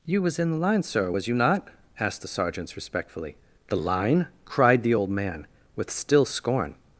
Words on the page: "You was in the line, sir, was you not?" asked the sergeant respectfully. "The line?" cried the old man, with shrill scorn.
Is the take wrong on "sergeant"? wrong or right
wrong